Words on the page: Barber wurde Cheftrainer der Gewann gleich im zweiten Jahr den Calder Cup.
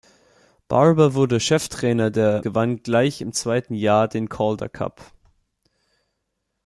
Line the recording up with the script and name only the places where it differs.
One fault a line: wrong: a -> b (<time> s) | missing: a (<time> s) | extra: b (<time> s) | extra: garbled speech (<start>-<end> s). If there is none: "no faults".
no faults